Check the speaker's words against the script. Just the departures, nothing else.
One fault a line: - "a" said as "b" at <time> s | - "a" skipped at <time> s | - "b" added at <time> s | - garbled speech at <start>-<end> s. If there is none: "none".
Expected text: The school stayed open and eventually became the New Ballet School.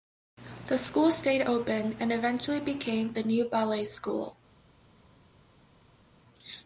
none